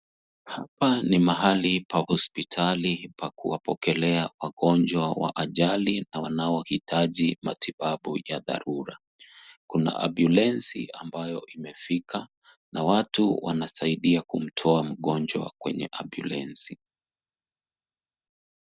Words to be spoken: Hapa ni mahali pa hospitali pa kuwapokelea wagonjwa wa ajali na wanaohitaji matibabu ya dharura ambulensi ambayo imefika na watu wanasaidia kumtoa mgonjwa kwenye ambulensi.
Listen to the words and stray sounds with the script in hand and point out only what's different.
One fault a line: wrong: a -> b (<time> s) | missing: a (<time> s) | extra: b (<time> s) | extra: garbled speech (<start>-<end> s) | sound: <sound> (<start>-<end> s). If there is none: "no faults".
extra: kuna (9.7 s)